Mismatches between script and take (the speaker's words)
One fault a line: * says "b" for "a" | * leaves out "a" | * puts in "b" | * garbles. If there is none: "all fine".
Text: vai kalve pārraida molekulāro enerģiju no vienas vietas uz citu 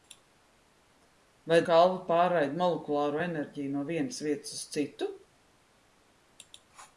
all fine